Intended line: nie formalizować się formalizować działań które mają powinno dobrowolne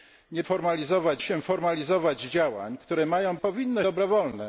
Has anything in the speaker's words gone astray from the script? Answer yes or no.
no